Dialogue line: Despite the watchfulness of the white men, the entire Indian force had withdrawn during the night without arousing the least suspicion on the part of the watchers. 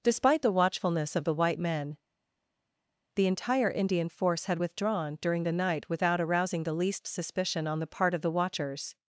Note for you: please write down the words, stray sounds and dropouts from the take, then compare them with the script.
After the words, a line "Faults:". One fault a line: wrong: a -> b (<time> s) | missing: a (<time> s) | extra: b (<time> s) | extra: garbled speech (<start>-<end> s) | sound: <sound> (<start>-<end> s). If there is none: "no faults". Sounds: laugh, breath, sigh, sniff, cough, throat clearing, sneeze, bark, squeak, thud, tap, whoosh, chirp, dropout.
Despite the watchfulness of the white men, the entire Indian force had withdrawn during the night without arousing the least suspicion on the part of the watchers.
Faults:
no faults